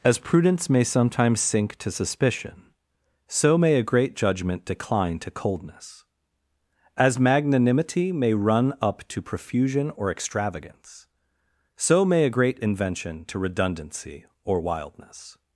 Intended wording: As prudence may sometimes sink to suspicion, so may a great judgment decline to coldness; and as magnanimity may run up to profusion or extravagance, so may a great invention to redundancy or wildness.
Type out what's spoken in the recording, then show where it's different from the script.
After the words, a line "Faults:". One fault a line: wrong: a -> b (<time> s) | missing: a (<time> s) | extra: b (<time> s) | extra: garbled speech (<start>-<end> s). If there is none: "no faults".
As prudence may sometimes sink to suspicion, so may a great judgment decline to coldness; as magnanimity may run up to profusion or extravagance, so may a great invention to redundancy or wildness.
Faults:
missing: and (6.0 s)